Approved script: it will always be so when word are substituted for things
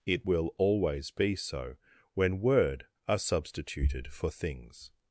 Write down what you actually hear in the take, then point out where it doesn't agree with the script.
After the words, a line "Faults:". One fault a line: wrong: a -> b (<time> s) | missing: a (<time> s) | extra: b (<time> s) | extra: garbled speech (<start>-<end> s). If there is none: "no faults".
it will always be so when word are substituted for things
Faults:
no faults